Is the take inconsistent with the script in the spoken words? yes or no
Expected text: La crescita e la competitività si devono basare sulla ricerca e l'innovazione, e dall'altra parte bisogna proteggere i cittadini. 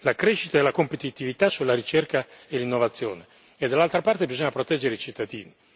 yes